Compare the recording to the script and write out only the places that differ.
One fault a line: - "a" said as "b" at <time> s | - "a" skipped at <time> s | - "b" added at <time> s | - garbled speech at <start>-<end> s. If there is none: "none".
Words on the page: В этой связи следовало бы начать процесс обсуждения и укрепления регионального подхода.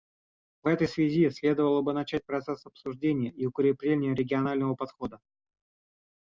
none